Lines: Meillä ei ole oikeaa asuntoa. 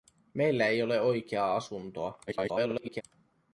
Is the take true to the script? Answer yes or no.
no